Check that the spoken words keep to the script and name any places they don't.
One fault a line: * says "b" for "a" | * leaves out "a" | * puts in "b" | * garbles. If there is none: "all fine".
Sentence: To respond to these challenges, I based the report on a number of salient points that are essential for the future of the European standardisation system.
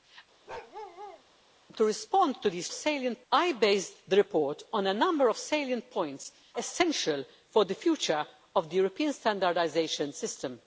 * says "salient" for "challenges"
* leaves out "that are"